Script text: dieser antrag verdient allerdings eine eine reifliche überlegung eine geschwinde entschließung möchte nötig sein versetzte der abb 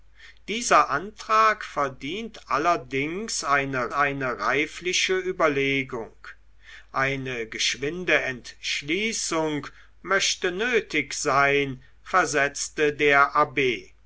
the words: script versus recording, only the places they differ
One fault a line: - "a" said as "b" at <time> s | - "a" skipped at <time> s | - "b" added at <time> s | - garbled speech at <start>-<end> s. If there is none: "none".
none